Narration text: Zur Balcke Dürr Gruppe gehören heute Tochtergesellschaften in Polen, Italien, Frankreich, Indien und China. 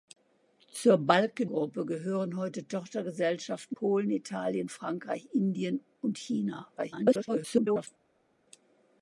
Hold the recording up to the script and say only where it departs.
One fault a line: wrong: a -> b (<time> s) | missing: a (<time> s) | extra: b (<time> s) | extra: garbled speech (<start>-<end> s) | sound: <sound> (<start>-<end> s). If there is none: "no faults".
missing: Dürr (1.4 s)
missing: in (3.8 s)
extra: garbled speech (6.8-7.9 s)